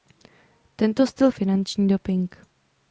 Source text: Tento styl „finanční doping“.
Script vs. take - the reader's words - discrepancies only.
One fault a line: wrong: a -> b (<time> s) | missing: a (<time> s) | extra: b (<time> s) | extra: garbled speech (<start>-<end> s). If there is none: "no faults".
no faults